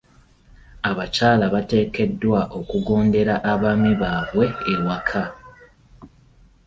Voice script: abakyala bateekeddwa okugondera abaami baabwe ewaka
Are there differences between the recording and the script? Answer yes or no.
no